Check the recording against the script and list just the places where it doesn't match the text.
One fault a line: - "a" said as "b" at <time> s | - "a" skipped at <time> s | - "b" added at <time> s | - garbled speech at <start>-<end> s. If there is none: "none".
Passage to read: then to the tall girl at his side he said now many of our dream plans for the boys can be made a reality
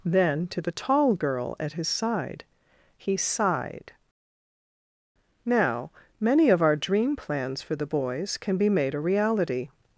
- "said" said as "sighed" at 3.2 s